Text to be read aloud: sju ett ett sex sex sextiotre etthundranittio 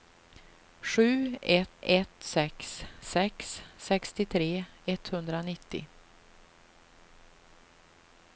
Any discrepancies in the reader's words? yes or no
no